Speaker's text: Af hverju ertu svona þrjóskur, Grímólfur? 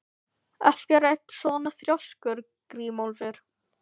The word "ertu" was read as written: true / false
true